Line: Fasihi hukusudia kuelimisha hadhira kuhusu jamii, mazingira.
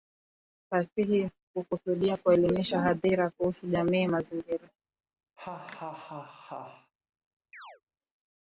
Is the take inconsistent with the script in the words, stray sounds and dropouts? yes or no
yes